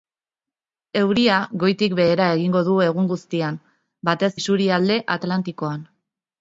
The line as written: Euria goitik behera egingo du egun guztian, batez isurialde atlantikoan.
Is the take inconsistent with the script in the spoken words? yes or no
no